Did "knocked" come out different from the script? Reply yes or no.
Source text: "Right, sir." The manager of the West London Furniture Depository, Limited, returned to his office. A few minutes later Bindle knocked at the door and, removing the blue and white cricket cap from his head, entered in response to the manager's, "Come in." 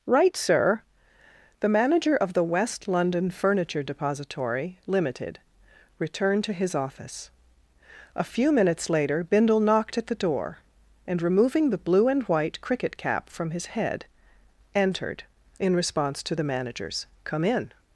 no